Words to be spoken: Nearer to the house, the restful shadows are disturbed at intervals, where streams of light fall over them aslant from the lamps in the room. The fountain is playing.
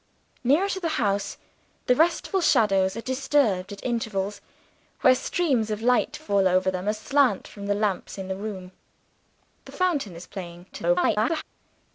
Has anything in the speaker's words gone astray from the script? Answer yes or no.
yes